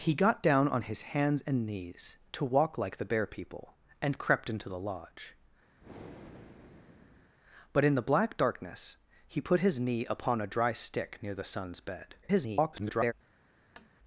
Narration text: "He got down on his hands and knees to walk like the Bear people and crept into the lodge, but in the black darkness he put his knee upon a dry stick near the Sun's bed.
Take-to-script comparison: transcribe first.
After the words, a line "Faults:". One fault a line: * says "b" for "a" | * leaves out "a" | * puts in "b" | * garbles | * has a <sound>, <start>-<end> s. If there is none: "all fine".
"He got down on his hands and knees to walk like the Bear people and crept into the lodge, but in the black darkness he put his knee upon a dry stick near the Sun's bed. [garbled]
Faults:
* has a breath, 5.8-7.3 s
* garbles
* has a tap, 13.8-13.9 s